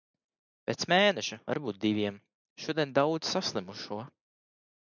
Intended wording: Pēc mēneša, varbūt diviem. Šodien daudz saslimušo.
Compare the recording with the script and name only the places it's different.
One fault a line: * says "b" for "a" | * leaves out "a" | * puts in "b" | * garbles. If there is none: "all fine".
all fine